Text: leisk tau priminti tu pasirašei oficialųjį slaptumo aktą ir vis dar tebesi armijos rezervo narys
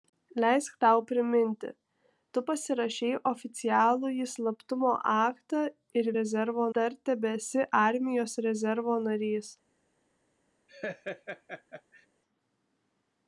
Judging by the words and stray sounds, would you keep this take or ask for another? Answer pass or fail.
fail